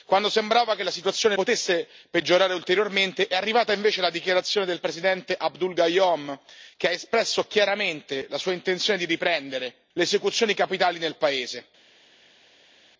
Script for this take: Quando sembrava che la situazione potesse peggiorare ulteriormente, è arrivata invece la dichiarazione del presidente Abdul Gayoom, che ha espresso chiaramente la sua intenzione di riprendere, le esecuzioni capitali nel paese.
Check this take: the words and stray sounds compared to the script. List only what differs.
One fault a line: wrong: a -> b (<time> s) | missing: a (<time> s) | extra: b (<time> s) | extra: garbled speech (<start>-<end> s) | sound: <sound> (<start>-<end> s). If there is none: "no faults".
no faults